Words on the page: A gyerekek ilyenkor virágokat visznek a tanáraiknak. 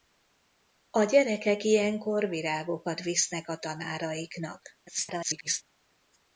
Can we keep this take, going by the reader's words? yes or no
no